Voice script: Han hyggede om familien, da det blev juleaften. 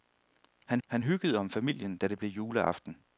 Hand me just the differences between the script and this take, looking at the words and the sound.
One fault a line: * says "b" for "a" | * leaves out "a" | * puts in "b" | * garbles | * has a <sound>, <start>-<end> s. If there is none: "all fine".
* puts in "han"